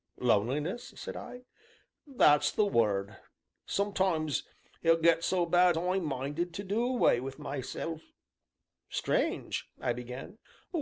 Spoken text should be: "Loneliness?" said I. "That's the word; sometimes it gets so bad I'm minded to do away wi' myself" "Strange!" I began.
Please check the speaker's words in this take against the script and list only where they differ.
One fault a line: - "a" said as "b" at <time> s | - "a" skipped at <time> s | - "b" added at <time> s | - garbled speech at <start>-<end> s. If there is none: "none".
none